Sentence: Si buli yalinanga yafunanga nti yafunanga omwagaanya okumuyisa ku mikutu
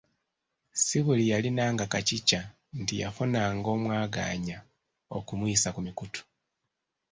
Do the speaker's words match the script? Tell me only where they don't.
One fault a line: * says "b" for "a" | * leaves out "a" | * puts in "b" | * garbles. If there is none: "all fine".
* says "kacica" for "yafunanga"